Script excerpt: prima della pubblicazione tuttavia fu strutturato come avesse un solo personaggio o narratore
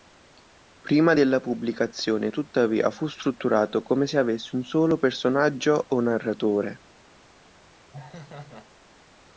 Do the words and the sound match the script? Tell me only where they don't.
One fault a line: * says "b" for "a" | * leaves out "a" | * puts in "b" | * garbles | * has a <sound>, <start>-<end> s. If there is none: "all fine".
* puts in "se"
* has a laugh, 7.9-8.7 s